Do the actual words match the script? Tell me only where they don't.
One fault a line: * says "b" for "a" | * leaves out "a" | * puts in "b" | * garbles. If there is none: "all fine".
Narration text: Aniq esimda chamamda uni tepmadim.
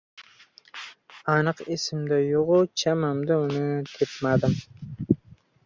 * puts in "yo‘g‘-u"